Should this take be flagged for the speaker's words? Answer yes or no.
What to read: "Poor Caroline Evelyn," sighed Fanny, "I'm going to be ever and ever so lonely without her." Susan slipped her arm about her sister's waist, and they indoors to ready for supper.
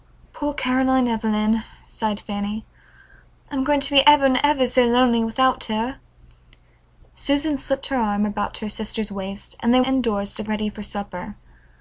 no